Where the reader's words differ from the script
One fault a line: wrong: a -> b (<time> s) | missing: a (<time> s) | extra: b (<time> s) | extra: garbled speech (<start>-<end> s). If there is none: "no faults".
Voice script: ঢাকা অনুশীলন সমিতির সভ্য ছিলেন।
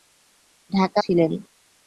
missing: অনুশীলন সমিতির সভ্য (1.0 s)